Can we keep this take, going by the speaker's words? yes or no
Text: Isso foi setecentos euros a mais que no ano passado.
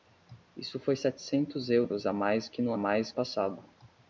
no